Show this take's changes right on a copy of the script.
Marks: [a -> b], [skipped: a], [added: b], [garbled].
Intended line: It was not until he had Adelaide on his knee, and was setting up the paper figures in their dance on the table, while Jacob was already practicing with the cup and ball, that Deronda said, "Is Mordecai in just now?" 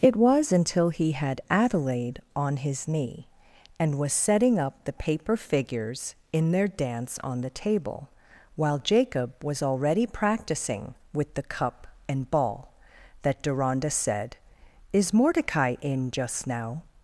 It was [skipped: not] until he had Adelaide on his knee, and was setting up the paper figures in their dance on the table, while Jacob was already practicing with the cup and ball, that Deronda said, "Is Mordecai in just now?"